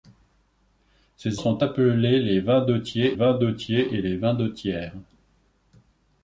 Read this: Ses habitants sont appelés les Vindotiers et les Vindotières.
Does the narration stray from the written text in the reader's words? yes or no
yes